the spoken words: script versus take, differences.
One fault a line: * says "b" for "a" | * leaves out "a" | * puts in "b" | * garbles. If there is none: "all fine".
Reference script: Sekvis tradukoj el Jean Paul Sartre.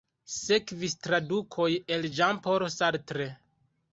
all fine